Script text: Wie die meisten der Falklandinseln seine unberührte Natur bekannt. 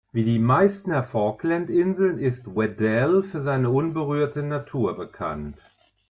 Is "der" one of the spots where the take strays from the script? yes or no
no